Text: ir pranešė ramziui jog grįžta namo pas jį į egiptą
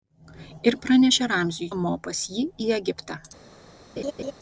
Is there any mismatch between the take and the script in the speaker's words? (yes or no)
yes